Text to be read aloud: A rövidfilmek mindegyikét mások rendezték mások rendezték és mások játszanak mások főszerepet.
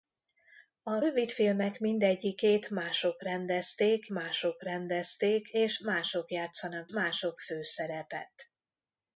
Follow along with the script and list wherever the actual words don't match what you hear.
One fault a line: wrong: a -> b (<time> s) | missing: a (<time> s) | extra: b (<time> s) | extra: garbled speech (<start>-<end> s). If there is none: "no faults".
no faults